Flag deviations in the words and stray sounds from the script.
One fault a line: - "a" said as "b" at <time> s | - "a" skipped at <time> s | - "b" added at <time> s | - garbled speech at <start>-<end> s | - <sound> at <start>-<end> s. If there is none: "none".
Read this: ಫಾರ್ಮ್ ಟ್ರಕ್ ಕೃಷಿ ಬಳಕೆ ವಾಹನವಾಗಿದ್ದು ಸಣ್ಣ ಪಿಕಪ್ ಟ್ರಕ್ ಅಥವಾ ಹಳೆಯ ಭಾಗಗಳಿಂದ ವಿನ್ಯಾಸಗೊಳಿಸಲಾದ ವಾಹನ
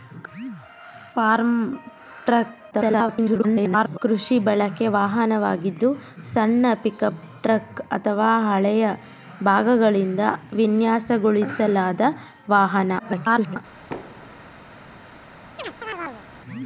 - garbled speech at 2.7-4.0 s
- garbled speech at 13.0-13.6 s
- thud at 13.9-14.5 s
- chirp at 15.6-16.3 s